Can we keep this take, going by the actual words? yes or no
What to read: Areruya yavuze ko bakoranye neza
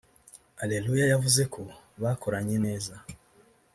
yes